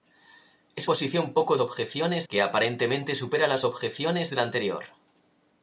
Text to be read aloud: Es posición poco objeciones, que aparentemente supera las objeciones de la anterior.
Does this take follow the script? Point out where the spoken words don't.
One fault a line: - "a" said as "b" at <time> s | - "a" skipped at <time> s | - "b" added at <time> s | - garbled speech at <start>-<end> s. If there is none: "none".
none